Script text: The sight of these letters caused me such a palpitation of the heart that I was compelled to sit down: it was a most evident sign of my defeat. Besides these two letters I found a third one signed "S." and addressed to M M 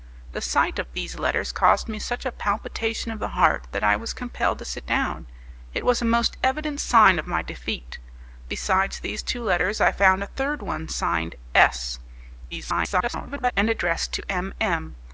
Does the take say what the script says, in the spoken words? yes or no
no